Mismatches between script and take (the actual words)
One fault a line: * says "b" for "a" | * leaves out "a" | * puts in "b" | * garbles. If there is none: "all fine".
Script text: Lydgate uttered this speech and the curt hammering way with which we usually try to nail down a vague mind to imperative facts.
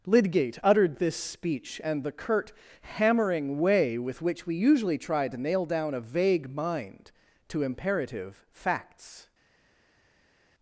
all fine